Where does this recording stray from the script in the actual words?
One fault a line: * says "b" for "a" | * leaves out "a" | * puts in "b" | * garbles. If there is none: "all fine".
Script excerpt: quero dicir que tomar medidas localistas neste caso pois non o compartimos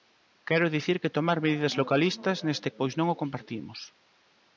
* leaves out "caso"